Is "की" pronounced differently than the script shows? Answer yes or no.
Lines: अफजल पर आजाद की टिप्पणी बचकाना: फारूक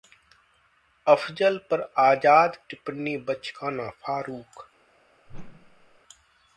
yes